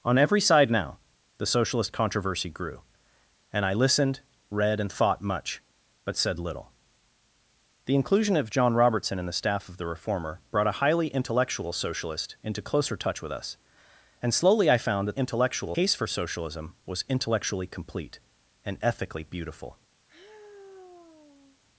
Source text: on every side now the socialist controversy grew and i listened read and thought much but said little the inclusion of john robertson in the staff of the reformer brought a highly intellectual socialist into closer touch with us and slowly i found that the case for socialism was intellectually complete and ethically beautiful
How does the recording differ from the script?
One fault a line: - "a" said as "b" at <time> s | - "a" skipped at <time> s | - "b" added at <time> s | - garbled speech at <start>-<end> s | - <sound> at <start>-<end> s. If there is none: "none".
- "the" said as "intellectual" at 15.1 s
- sigh at 20.1-21.6 s